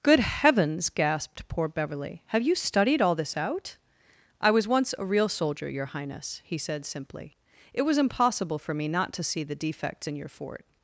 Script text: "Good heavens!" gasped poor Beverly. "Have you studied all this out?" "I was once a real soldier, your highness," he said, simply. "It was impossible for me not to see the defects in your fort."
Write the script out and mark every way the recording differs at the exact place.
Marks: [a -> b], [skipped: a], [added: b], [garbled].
"Good heavens!" gasped poor Beverly. "Have you studied all this out?" "I was once a real soldier, your highness," he said, simply. "It was impossible for me not to see the defects in your fort."